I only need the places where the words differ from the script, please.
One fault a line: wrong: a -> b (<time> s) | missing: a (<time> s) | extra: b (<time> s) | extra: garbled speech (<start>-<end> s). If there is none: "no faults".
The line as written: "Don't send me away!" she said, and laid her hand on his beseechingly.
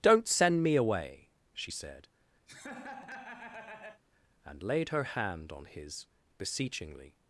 no faults